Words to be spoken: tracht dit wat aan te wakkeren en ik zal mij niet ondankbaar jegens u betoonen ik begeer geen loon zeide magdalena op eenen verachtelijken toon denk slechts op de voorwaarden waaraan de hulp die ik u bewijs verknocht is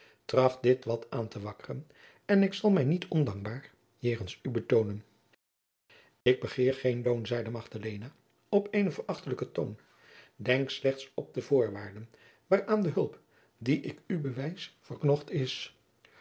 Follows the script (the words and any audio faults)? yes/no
no